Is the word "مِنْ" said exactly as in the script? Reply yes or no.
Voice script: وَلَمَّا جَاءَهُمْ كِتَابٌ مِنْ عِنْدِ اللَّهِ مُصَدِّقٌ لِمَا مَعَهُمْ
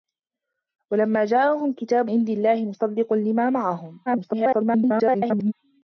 no